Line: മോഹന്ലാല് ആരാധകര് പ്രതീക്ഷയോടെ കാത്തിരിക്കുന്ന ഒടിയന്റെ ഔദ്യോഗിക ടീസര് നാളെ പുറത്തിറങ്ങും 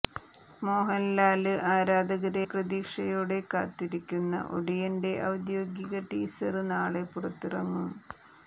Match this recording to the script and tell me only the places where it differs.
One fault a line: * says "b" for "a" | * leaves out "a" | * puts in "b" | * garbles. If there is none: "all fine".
all fine